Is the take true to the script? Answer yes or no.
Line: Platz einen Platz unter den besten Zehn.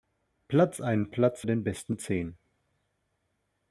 no